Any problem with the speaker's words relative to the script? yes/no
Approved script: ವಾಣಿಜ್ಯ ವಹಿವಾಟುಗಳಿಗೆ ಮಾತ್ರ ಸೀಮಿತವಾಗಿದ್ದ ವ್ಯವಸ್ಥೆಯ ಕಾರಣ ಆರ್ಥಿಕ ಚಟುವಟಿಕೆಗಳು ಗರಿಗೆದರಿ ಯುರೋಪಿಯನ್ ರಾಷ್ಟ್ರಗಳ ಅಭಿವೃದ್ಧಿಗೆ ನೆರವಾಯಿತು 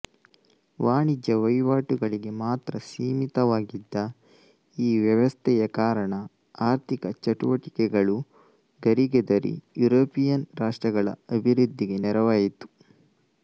yes